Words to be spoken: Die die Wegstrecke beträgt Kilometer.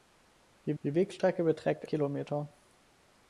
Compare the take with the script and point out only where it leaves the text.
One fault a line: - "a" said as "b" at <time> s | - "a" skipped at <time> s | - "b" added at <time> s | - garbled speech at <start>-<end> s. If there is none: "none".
none